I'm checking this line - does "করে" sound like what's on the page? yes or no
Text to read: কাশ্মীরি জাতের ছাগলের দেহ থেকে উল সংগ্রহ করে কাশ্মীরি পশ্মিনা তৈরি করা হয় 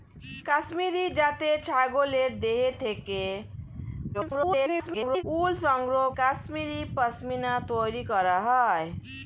no